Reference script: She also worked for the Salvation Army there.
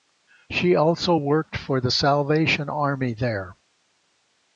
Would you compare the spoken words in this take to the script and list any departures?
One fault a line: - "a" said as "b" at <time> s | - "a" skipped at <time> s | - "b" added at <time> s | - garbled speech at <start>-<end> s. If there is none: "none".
none